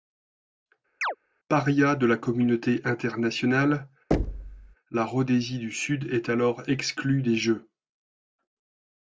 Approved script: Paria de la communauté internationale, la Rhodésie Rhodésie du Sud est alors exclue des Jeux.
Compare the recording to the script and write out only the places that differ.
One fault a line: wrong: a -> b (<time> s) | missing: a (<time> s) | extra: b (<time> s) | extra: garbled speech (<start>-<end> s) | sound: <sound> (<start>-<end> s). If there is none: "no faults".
sound: chirp (1.0-1.2 s)
sound: thud (4.1-4.8 s)
missing: Rhodésie (5.6 s)